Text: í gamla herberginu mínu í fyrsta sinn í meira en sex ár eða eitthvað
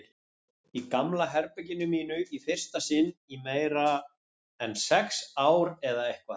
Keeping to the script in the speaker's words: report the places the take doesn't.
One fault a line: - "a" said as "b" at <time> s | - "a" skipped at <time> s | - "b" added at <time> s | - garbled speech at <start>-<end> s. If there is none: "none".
none